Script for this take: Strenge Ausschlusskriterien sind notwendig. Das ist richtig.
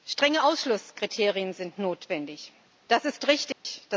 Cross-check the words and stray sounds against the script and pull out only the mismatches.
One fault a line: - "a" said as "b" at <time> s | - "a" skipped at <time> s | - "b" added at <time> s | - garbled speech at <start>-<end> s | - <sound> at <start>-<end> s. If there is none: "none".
- dropout at 3.5-3.6 s